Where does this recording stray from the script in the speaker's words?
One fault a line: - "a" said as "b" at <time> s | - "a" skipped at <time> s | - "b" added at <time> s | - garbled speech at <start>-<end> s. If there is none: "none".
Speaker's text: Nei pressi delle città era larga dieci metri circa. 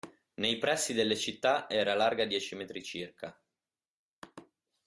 none